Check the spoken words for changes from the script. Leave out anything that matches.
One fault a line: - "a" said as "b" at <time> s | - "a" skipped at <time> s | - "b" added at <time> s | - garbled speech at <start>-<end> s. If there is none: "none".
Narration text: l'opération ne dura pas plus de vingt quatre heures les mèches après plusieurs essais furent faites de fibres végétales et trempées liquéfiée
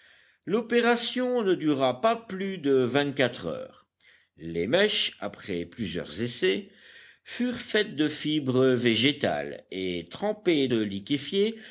none